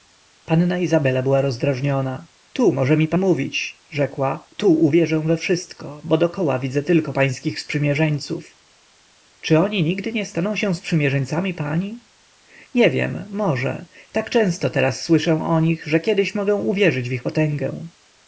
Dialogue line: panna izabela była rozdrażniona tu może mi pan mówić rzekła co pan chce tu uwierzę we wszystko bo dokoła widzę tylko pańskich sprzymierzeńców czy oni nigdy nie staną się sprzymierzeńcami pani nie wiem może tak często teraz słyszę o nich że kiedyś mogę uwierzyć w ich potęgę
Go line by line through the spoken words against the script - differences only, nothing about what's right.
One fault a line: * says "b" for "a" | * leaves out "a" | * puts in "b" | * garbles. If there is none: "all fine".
* leaves out "co pan chce"